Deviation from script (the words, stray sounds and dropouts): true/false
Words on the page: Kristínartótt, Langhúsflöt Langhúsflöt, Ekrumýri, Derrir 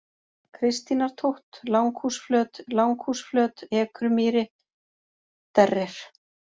false